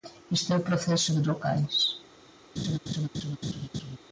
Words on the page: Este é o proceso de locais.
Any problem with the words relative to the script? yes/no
no